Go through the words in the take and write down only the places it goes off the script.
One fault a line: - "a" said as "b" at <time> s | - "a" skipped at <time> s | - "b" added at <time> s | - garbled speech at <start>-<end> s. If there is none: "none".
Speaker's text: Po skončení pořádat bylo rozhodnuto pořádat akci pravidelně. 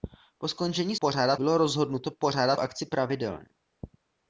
none